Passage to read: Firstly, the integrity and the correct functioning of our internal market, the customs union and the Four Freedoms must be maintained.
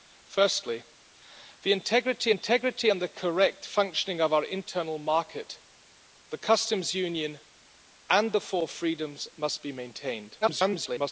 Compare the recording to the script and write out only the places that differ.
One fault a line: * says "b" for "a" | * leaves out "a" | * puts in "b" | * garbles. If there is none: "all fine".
* puts in "integrity"
* garbles